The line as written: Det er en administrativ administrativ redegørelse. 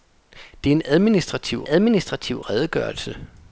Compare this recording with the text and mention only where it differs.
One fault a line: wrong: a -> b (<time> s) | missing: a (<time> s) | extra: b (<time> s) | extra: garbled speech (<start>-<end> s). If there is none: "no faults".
no faults